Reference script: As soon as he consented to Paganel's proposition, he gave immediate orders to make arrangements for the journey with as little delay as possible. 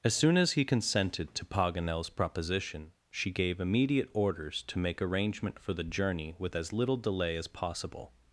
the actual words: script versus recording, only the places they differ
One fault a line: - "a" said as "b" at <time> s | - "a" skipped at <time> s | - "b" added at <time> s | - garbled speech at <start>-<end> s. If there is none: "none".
- "he" said as "she" at 3.1 s
- "arrangements" said as "arrangement" at 5.0 s